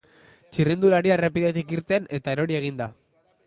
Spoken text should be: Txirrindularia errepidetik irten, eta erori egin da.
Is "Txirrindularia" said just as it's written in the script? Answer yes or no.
yes